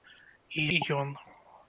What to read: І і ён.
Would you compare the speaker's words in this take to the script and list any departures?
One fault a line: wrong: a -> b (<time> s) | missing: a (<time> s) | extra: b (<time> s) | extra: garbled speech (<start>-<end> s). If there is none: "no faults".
no faults